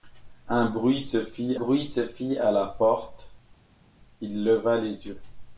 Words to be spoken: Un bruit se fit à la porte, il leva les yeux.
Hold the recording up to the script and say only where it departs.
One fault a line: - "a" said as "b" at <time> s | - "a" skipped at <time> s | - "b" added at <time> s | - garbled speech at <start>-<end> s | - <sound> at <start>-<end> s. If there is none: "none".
- "bruit se fit" added at 1.6 s